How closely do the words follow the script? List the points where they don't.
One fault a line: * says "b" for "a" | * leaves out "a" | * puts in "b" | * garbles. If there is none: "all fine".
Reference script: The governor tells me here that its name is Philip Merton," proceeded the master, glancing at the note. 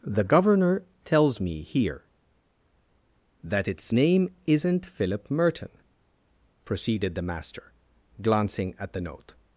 * says "isn't" for "is"